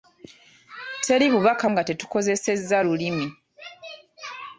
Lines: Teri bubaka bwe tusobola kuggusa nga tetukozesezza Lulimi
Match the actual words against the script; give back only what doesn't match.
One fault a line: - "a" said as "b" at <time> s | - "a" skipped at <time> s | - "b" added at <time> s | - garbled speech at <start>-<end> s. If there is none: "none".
- "bwe tusobola kuggusa" skipped at 1.6 s